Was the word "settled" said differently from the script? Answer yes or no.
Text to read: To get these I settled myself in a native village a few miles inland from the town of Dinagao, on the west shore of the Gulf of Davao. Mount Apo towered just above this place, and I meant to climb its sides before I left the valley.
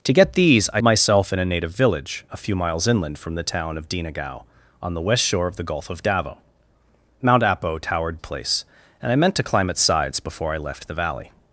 yes